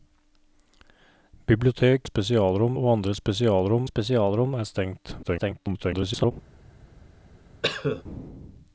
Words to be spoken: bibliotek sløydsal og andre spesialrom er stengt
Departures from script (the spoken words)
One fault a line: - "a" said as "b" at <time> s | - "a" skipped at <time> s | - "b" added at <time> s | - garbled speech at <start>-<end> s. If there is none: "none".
- "sløydsal" said as "spesialrom" at 2.0 s
- "spesialrom" added at 3.8 s
- garbled speech at 5.2-6.3 s